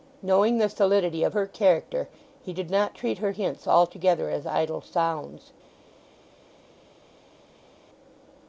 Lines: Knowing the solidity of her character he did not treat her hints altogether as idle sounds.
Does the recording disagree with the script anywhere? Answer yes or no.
no